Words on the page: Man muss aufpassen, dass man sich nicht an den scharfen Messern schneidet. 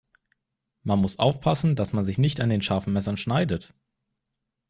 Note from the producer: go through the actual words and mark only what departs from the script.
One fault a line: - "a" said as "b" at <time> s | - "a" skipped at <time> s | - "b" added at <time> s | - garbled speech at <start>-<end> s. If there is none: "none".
none